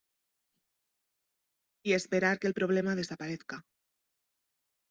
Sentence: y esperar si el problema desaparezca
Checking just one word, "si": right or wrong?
wrong